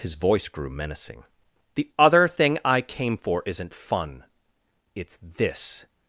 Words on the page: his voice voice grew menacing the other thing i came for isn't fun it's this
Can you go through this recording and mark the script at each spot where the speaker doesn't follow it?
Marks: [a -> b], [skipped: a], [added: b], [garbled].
his voice [skipped: voice] grew menacing the other thing i came for isn't fun it's this